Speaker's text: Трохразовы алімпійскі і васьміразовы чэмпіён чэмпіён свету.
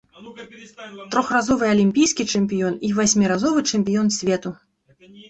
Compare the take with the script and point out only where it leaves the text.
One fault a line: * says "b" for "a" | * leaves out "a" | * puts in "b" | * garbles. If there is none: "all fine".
* puts in "чэмпіён"
* leaves out "чэмпіён"